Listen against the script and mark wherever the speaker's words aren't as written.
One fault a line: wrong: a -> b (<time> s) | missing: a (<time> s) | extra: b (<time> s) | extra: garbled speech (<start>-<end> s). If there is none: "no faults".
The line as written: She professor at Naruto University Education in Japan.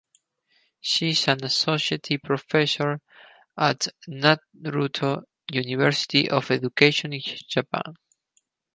extra: is an associate (1.1 s)
extra: of (6.3 s)